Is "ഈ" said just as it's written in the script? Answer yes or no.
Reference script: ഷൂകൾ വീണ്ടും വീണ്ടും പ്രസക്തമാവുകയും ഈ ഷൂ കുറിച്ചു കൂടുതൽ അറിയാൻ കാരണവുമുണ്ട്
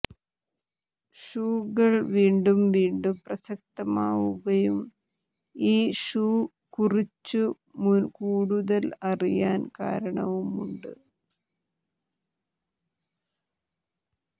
yes